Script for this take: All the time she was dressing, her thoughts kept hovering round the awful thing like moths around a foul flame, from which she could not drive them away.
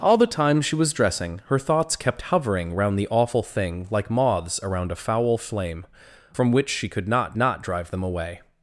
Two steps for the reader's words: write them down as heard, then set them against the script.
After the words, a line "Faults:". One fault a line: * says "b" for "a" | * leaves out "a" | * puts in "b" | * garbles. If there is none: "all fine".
All the time she was dressing, her thoughts kept hovering round the awful thing like moths around a foul flame, from which she could not not drive them away.
Faults:
* puts in "not"